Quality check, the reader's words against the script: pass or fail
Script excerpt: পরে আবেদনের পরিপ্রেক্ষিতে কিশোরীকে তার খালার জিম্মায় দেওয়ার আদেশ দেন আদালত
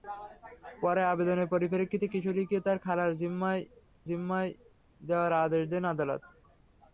fail